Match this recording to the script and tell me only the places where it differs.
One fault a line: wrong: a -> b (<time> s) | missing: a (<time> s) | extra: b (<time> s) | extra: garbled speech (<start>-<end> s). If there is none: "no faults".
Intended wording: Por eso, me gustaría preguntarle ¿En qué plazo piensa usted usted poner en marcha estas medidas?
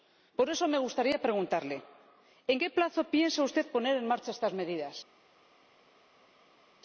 missing: usted (3.7 s)